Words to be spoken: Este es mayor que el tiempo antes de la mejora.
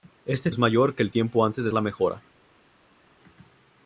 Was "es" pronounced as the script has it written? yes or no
yes